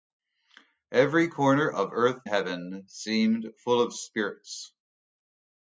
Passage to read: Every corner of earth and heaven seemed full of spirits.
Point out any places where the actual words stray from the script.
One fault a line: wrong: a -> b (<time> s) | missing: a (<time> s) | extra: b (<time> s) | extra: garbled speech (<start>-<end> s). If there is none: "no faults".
missing: and (2.2 s)